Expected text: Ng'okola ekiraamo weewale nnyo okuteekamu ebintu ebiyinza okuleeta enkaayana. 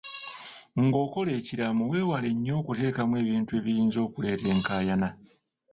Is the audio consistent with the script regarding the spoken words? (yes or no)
yes